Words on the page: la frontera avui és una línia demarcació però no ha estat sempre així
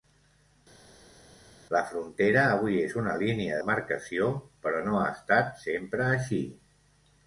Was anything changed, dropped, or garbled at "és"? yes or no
no